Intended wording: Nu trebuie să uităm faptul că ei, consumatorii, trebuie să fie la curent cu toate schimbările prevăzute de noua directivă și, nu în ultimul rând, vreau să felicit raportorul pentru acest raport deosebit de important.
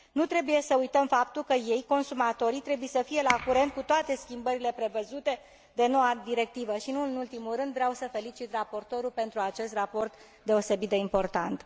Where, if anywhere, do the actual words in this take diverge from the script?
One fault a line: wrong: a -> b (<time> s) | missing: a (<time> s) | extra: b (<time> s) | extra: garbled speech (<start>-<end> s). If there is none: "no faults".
no faults